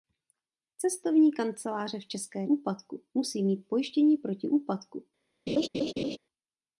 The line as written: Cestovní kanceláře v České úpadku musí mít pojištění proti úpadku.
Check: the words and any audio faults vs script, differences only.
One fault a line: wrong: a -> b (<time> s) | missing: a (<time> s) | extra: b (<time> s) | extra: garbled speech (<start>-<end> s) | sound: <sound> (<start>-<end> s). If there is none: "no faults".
sound: laugh (5.5-6.2 s)